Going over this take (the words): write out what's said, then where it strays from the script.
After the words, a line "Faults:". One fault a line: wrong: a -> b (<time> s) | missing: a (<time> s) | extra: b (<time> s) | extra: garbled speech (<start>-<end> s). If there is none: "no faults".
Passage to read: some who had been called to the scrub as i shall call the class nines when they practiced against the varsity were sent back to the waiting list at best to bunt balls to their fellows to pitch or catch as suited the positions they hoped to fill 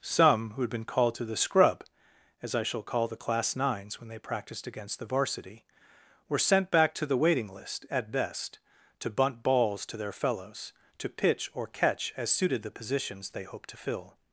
some who had been called to the scrub as i shall call the class nines when they practiced against the varsity were sent back to the waiting list at best to bunt balls to their fellows to pitch or catch as suited the positions they hoped to fill
Faults:
no faults